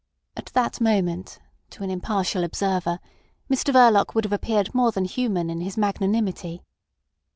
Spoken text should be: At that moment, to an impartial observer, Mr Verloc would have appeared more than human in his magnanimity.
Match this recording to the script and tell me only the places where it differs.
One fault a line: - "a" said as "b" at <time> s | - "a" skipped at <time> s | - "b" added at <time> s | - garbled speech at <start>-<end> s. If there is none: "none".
none